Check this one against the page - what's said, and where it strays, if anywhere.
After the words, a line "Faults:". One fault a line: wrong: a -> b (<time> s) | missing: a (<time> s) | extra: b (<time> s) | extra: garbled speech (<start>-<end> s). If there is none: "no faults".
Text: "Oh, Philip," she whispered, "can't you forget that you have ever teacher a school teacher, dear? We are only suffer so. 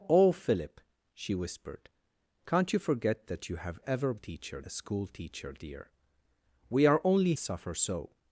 "Oh, Philip," she whispered, "can't you forget that you have ever teacher a school teacher, dear? We are only suffer so.
Faults:
no faults